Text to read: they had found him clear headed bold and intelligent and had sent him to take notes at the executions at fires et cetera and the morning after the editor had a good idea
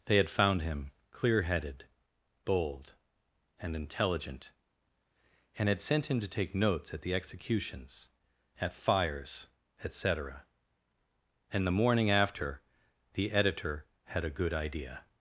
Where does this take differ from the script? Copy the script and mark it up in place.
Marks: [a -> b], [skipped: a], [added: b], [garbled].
they had found him clear headed bold and intelligent and had sent him to take notes at the executions at fires et cetera and the morning after the editor had a good idea